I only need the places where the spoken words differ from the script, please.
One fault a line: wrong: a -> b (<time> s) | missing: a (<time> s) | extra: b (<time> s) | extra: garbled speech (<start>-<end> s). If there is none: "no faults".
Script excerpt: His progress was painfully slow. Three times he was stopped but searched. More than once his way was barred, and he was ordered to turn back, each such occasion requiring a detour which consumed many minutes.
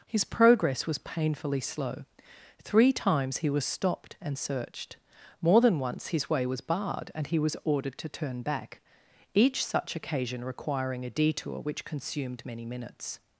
wrong: but -> and (4.2 s)